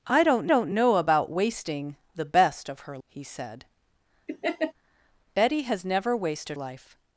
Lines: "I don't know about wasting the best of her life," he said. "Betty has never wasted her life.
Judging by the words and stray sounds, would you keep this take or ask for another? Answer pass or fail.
fail